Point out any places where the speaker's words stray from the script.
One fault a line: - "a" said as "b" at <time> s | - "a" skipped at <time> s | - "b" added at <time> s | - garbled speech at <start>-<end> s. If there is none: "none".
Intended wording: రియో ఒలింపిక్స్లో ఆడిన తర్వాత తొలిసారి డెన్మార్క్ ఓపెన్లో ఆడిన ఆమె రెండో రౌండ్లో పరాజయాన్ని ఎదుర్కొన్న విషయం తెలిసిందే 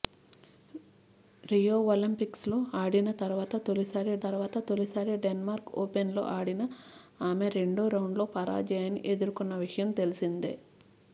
- "తర్వాత తొలిసారి" added at 4.2 s